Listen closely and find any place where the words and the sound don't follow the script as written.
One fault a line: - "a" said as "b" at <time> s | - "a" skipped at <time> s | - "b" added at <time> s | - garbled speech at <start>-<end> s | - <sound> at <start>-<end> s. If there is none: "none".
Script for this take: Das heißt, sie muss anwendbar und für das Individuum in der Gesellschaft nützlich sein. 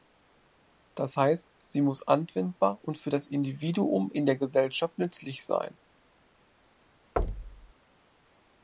- thud at 7.2-7.7 s